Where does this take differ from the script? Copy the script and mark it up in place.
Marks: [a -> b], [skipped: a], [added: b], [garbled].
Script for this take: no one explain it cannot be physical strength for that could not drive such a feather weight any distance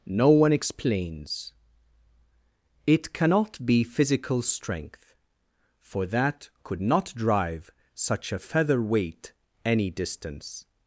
no one [explain -> explains] it cannot be physical strength for that could not drive such a feather weight any distance